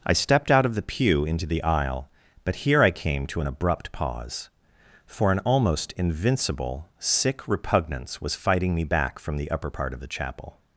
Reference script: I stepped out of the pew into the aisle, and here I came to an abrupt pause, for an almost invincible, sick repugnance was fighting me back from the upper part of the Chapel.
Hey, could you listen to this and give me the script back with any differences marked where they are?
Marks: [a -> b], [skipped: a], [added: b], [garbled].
I stepped out of the pew into the aisle, [and -> but] here I came to an abrupt pause, for an almost invincible, sick repugnance was fighting me back from the upper part of the Chapel.